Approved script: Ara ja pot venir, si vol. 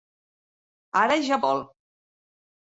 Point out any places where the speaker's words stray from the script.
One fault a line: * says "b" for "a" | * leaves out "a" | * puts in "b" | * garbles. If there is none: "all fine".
* leaves out "pot venir si"